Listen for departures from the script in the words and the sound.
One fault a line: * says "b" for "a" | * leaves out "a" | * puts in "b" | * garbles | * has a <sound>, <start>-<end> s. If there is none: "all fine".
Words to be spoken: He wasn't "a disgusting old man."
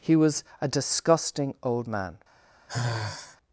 * says "was" for "wasn't"
* has a sigh, 2.7-3.4 s